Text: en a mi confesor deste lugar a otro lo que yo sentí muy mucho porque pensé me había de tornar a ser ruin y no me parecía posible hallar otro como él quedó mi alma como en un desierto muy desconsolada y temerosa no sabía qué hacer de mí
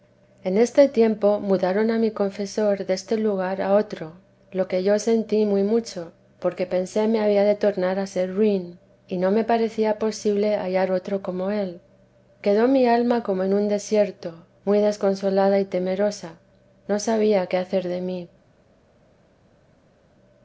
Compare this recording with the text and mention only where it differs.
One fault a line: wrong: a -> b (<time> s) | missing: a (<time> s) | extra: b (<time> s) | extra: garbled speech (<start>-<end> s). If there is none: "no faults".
extra: este tiempo mudaron (0.6 s)